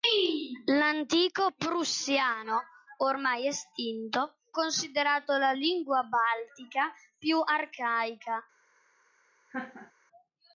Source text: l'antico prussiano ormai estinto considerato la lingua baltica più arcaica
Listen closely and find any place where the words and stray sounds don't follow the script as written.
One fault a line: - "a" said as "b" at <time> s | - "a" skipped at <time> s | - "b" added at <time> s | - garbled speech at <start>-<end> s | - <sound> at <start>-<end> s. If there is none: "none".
- laugh at 9.5-9.9 s